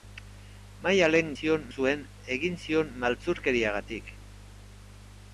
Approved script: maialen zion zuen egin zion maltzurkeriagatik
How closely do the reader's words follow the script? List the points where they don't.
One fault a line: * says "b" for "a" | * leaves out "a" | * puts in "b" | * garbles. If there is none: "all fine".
all fine